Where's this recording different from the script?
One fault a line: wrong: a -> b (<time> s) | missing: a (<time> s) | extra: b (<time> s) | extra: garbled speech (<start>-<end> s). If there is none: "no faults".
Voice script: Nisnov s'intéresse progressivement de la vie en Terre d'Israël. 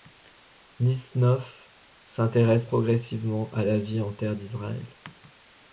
wrong: de -> à (3.5 s)